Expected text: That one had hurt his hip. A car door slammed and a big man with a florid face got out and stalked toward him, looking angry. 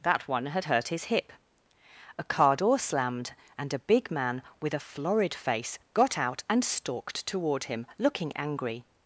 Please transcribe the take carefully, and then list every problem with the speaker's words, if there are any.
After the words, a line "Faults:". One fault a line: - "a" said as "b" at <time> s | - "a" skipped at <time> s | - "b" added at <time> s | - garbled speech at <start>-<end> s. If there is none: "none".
That one had hurt his hip. A car door slammed and a big man with a florid face got out and stalked toward him, looking angry.
Faults:
none